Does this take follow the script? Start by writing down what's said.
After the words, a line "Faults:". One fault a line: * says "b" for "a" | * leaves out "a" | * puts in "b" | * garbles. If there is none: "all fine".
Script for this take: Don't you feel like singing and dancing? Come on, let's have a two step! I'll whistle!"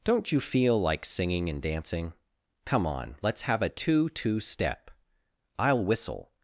Don't you feel like singing and dancing? Come on, let's have a two two step! I'll whistle!"
Faults:
* puts in "two"